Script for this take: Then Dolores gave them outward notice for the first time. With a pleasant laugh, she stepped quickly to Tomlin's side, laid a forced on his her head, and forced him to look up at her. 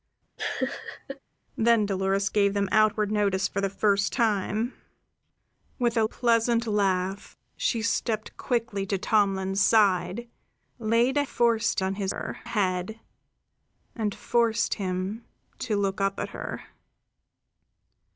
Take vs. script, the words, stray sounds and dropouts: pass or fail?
fail